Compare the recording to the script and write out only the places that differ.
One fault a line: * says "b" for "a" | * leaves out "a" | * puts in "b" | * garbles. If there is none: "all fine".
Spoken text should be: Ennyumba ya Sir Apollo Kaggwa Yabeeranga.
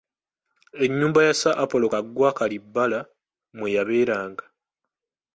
* puts in "Kalibbala mwe"